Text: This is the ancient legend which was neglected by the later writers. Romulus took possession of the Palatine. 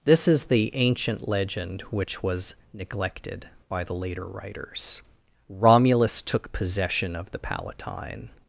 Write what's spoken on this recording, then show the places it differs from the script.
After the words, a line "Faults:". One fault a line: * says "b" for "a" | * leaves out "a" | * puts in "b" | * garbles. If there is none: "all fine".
This is the ancient legend which was neglected by the later writers. Romulus took possession of the Palatine.
Faults:
all fine